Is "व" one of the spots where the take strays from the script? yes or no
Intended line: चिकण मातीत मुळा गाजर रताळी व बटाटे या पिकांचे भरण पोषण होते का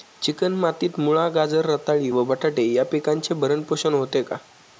no